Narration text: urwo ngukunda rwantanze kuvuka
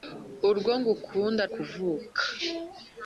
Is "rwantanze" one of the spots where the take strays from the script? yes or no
yes